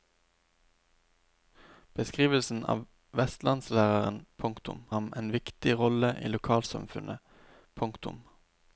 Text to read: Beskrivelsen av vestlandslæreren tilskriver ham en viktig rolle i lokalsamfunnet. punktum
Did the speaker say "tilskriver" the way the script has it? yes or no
no